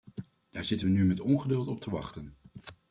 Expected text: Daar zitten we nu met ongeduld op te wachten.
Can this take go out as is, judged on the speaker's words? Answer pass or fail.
pass